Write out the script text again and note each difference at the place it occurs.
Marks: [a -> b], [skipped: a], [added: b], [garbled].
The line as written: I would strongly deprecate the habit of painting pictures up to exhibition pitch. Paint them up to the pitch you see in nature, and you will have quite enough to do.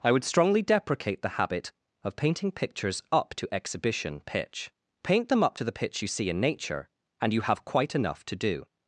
I would strongly deprecate the habit of painting pictures up to exhibition pitch. Paint them up to the pitch you see in nature, and you [skipped: will] have quite enough to do.